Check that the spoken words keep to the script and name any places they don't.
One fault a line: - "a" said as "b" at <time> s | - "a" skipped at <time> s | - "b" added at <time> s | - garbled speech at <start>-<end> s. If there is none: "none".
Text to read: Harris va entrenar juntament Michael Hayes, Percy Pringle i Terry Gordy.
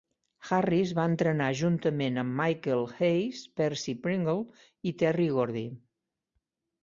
- "amb" added at 2.2 s